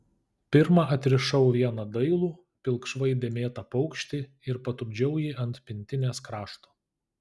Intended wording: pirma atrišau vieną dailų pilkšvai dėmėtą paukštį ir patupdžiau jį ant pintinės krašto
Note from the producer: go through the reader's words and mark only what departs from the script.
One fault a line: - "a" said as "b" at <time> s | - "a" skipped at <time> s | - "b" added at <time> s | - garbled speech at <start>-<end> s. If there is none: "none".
none